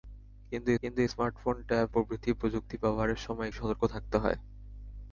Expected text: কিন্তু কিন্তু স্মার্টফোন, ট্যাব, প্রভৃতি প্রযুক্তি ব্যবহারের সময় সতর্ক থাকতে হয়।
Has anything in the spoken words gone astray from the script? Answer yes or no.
no